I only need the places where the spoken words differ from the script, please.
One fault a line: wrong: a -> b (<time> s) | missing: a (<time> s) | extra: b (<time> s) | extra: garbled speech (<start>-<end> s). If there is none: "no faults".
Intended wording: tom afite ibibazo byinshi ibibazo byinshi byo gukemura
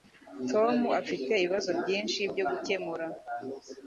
missing: ibibazo byinshi (2.2 s)